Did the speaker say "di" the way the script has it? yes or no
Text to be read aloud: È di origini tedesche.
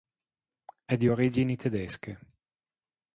yes